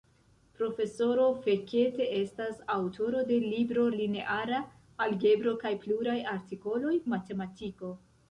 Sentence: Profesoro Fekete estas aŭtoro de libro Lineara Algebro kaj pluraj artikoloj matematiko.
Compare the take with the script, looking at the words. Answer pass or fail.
pass